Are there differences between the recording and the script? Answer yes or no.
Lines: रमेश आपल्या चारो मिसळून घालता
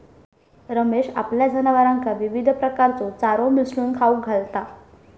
yes